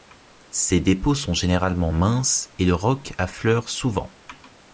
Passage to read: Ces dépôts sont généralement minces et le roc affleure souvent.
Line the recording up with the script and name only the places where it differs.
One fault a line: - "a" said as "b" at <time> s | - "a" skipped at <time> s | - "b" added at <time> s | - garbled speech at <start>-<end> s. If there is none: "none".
none